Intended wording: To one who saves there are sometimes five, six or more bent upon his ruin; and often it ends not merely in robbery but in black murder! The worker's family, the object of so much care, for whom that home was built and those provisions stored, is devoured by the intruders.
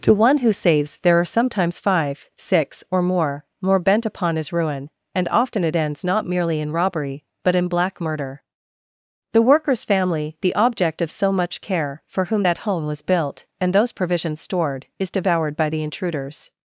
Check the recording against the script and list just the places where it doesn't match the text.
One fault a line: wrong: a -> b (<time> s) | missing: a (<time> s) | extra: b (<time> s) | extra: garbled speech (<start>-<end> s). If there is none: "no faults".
extra: more (3.6 s)